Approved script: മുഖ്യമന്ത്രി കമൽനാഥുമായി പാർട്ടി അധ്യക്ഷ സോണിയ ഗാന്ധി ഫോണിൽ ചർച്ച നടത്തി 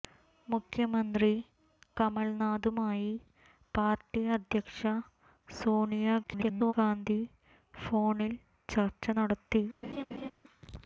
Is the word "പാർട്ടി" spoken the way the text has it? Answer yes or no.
yes